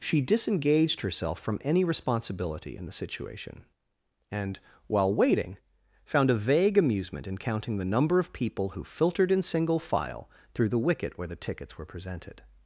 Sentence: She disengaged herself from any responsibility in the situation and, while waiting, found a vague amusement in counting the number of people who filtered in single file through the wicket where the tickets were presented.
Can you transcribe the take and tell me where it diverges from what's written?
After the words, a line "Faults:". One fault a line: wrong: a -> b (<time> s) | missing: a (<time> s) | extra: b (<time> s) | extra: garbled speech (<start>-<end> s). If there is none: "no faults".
She disengaged herself from any responsibility in the situation and, while waiting, found a vague amusement in counting the number of people who filtered in single file through the wicket where the tickets were presented.
Faults:
no faults